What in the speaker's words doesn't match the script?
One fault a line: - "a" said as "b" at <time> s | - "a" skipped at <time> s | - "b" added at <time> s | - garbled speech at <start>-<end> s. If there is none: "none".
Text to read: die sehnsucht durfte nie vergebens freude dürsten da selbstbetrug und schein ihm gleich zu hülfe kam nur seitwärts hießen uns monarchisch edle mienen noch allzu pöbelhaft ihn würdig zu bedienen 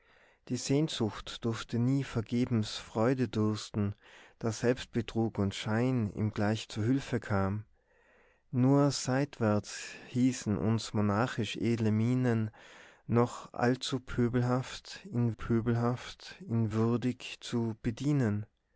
- "pöbelhaft ihn" added at 15.3 s